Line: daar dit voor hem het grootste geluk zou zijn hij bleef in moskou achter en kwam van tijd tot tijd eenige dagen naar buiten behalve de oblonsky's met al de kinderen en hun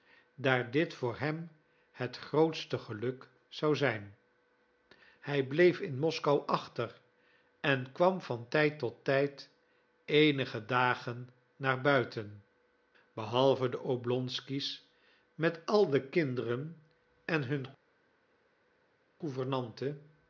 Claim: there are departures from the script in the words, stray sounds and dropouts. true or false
false